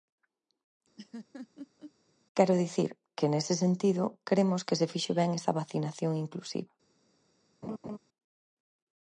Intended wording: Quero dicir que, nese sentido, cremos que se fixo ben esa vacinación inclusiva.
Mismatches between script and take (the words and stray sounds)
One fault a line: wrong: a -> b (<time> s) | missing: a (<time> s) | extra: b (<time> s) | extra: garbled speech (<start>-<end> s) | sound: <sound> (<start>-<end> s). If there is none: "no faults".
sound: laugh (1.0-1.9 s)
sound: laugh (7.6-8.0 s)